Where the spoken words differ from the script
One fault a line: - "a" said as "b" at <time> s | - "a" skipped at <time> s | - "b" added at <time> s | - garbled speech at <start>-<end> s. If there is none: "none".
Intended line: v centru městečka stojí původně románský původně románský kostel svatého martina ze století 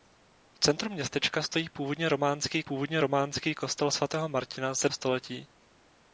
none